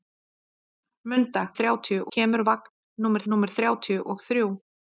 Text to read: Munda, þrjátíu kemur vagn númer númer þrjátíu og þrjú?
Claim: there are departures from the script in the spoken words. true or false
false